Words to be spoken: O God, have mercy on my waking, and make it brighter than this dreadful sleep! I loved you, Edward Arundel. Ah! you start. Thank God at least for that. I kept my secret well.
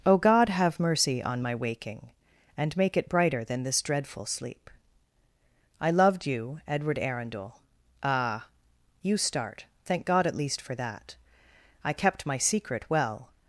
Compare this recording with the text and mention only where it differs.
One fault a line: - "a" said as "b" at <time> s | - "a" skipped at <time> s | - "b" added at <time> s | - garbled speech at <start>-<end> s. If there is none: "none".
none